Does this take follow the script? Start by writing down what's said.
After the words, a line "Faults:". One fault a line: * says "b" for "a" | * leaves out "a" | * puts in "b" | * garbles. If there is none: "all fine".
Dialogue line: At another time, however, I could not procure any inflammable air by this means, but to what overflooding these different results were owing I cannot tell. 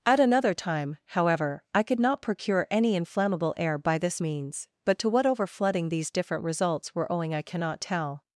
At another time, however, I could not procure any inflammable air by this means, but to what overflooding these different results were owing I cannot tell.
Faults:
all fine